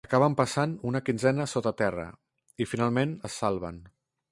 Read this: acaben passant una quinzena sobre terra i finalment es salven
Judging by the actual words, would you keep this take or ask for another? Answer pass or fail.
fail